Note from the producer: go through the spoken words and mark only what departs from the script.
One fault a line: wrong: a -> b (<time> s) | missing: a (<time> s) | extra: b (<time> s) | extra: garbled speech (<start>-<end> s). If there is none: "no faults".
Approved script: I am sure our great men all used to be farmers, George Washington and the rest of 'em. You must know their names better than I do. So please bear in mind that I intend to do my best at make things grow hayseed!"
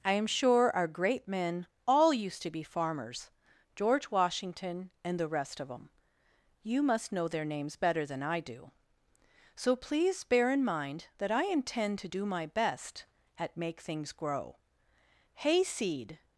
no faults